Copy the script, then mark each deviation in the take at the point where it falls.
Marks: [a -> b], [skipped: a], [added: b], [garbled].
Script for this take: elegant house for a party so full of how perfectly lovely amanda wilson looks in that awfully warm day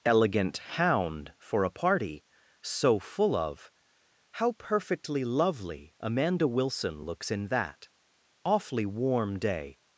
elegant [house -> hound] for a party so full of how perfectly lovely amanda wilson looks in that awfully warm day